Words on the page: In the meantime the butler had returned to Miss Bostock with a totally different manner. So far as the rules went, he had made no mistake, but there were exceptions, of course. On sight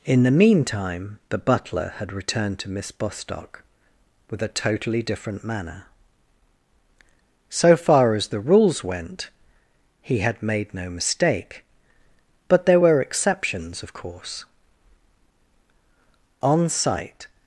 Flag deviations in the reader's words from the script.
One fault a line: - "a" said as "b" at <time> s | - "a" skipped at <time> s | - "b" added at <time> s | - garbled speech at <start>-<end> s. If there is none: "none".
none